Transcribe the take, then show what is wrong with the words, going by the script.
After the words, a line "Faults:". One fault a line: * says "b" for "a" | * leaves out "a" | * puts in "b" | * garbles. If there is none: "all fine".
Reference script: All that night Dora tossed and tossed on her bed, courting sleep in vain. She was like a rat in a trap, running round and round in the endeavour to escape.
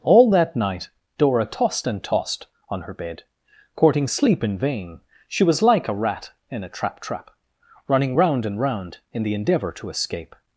All that night Dora tossed and tossed on her bed, courting sleep in vain. She was like a rat in a trap trap, running round and round in the endeavour to escape.
Faults:
* puts in "trap"